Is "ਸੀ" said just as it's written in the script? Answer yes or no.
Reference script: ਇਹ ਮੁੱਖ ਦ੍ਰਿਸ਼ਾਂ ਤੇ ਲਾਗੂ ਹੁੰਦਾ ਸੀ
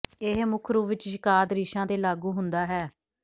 no